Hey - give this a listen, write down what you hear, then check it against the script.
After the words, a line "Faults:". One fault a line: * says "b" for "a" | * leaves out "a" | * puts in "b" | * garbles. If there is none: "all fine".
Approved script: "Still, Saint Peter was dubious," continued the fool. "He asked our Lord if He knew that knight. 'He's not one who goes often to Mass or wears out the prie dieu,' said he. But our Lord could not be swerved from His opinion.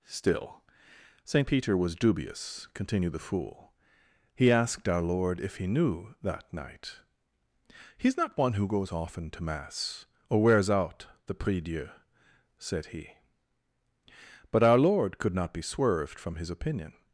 "Still, Saint Peter was dubious," continued the fool. "He asked our Lord if He knew that knight. 'He's not one who goes often to Mass or wears out the prie dieu,' said he. But our Lord could not be swerved from His opinion.
Faults:
all fine